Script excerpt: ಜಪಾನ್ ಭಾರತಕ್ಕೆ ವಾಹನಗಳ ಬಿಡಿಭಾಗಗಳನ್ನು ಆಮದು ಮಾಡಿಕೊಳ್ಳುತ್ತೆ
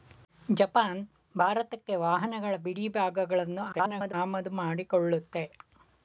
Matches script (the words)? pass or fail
fail